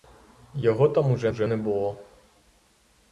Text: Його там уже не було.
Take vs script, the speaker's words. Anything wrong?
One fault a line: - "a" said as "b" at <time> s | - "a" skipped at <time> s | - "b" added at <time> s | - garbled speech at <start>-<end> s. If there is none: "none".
- "уже" added at 1.3 s